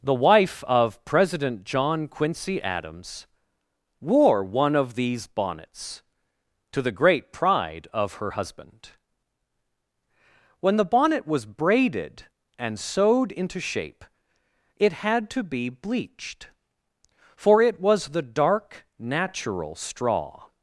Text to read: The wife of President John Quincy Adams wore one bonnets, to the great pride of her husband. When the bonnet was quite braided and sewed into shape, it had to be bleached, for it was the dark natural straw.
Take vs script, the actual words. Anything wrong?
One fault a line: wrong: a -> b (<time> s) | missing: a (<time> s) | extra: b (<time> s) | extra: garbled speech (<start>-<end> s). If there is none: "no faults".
extra: of these (4.8 s)
missing: quite (11.4 s)